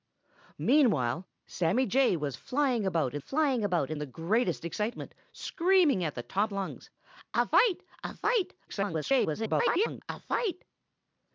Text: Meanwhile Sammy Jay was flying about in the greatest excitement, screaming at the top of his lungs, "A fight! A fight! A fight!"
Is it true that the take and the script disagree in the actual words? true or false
true